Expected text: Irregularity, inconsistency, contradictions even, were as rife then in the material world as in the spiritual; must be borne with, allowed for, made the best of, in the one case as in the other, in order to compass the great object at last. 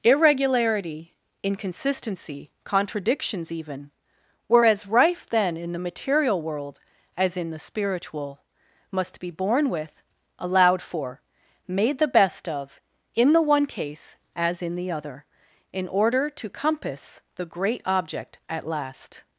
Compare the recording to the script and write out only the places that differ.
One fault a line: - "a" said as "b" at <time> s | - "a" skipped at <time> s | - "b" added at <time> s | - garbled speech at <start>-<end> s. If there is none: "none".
none